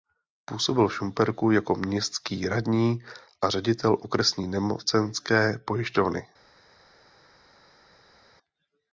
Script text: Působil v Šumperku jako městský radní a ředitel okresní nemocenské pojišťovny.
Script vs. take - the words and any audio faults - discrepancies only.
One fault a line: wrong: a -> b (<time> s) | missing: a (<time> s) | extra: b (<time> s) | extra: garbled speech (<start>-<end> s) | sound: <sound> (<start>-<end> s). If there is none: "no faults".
no faults